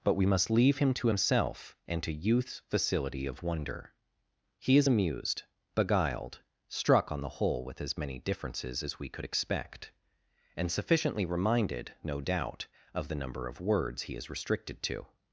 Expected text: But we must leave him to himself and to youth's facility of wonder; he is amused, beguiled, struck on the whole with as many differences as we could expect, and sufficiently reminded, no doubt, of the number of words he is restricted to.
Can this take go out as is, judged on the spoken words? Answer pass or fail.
pass